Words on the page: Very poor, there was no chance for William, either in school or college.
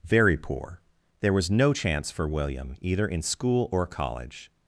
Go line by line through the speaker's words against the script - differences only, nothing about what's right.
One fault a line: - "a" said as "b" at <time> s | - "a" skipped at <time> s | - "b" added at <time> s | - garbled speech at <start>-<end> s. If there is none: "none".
none